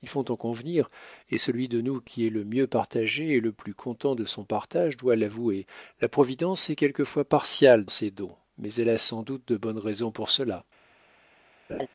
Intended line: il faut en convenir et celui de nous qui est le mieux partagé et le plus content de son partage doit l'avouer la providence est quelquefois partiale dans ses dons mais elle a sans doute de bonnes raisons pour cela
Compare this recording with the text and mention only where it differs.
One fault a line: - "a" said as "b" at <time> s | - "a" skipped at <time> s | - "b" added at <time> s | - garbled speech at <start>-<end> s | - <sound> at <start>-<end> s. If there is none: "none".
- "dans" skipped at 7.8 s
- laugh at 11.7-11.9 s